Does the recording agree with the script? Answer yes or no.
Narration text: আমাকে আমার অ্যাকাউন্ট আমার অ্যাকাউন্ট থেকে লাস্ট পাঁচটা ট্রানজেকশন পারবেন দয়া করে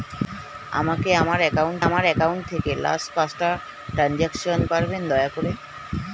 yes